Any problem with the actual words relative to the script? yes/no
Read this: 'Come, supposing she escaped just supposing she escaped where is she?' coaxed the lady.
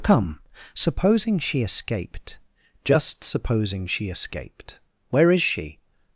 yes